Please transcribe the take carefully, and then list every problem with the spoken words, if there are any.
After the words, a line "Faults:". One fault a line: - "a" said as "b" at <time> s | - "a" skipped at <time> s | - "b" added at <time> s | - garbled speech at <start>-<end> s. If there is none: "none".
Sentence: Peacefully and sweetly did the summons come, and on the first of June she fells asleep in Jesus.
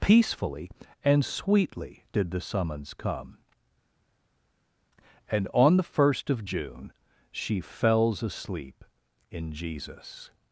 Peacefully and sweetly did the summons come, and on the first of June she fells asleep in Jesus.
Faults:
none